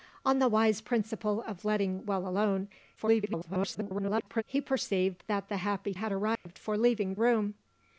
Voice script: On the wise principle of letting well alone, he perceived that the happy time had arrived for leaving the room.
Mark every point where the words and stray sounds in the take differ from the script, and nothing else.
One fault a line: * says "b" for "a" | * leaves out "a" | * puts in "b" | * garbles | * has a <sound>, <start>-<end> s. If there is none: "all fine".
* garbles
* leaves out "time"
* has a dropout, 6.4-6.5 s
* leaves out "the"